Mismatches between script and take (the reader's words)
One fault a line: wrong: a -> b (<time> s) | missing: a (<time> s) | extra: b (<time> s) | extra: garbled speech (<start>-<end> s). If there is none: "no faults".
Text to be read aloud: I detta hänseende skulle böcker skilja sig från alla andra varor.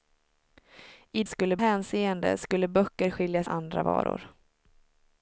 wrong: detta -> skulle (1.3 s)
missing: sig från alla (3.4 s)